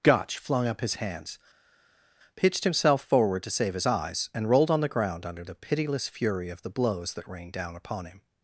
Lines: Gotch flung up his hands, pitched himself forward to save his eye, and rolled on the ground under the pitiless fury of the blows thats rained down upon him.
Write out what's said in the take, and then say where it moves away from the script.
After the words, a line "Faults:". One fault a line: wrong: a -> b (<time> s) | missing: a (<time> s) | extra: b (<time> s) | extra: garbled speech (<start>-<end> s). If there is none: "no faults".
Gotch flung up his hands, pitched himself forward to save his eyes, and rolled on the ground under the pitiless fury of the blows that rained down upon him.
Faults:
wrong: eye -> eyes (3.9 s)
wrong: thats -> that (7.1 s)